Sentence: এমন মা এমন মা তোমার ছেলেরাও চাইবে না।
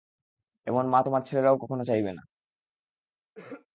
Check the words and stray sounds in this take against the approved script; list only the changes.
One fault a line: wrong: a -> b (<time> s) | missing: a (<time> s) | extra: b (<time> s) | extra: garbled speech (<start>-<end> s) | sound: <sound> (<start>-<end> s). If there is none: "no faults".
missing: এমন মা (1.0 s)
extra: কখনো (1.6 s)
sound: throat clearing (3.3-3.7 s)